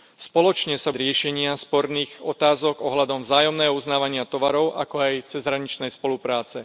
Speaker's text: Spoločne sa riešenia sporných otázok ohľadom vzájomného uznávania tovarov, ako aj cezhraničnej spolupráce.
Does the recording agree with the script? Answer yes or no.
yes